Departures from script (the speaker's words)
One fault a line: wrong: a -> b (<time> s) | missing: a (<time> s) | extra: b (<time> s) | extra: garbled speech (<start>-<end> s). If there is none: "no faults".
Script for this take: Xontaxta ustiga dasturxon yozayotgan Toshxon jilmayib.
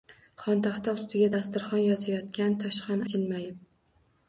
no faults